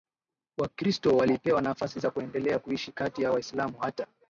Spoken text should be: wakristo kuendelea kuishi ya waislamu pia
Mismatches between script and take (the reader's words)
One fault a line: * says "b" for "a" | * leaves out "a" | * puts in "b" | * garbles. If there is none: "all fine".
* puts in "walipewa nafasi za"
* puts in "kati"
* says "hata" for "pia"